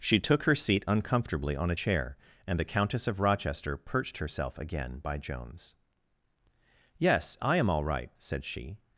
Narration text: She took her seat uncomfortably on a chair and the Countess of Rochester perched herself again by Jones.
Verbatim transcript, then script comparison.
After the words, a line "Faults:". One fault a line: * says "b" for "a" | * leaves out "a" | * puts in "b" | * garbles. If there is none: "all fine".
She took her seat uncomfortably on a chair and the Countess of Rochester perched herself again by Jones. "Yes, I am all right," said she
Faults:
* puts in "Yes I am all right said she"